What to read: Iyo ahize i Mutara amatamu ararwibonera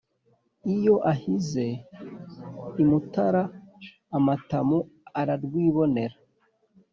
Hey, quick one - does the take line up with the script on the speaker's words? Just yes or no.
yes